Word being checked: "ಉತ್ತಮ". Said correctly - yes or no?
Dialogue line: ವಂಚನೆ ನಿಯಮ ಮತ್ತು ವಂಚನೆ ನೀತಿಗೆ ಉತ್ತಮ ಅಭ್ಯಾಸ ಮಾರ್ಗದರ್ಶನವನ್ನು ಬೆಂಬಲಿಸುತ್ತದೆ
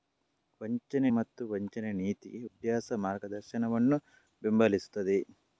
no